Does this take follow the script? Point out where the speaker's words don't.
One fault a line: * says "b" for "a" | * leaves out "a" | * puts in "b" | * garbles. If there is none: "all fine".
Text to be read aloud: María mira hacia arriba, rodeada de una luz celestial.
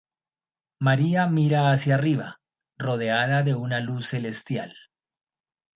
all fine